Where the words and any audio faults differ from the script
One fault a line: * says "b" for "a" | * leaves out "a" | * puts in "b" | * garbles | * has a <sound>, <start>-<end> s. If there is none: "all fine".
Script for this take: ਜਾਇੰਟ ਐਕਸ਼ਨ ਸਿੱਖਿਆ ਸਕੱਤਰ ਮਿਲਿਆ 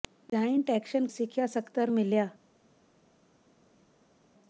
all fine